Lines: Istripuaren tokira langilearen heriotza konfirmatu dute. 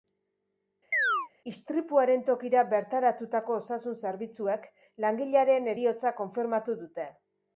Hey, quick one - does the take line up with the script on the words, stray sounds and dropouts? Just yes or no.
no